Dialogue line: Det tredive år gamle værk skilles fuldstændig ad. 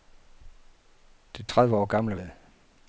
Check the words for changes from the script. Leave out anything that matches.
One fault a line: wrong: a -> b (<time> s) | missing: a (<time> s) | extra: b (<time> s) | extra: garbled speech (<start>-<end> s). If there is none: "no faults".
missing: værk skilles fuldstændig (2.2 s)